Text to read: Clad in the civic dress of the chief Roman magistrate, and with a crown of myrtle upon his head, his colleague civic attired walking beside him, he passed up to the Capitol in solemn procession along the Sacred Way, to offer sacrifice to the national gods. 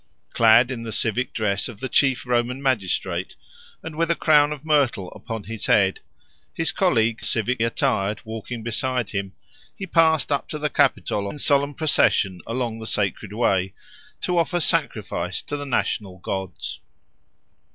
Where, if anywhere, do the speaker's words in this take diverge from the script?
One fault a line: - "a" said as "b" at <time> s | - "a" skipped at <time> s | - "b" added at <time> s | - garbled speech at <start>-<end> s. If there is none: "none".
none